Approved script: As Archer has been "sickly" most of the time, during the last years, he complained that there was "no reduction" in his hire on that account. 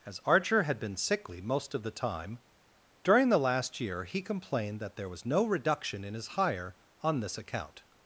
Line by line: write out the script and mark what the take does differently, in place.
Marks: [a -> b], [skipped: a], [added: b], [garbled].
As Archer [has -> had] been "sickly" most of the time, during the last [years, -> year] he complained that there was "no reduction" in his hire on [that -> this] account.